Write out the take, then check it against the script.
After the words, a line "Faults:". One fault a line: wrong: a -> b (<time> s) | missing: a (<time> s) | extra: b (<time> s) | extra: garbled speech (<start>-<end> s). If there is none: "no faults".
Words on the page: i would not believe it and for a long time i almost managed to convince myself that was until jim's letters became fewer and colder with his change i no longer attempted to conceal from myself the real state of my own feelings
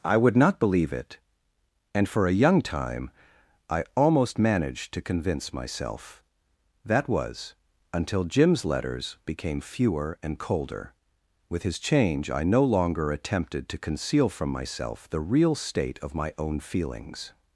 i would not believe it and for a young time i almost managed to convince myself that was until jim's letters became fewer and colder with his change i no longer attempted to conceal from myself the real state of my own feelings
Faults:
wrong: long -> young (2.3 s)